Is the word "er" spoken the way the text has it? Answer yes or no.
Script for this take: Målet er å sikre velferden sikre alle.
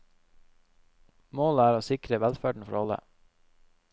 yes